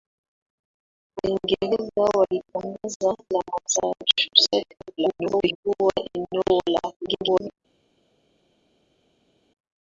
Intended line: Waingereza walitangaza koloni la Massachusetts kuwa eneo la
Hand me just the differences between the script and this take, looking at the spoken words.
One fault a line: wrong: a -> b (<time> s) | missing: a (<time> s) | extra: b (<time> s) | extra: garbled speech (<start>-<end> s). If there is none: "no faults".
missing: koloni (3.1 s)
extra: garbled speech (5.0-5.6 s)
extra: garbled speech (7.0-7.6 s)